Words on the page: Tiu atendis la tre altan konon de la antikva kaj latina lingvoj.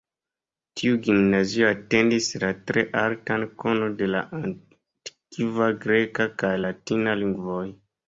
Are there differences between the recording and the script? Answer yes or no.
yes